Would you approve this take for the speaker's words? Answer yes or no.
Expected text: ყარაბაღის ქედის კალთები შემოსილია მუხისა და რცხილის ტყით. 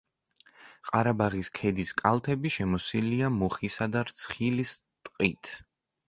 yes